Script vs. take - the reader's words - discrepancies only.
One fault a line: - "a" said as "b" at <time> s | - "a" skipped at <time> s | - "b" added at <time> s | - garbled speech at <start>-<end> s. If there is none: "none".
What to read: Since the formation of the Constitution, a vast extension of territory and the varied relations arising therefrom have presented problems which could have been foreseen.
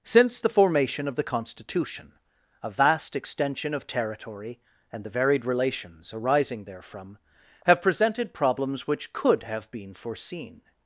none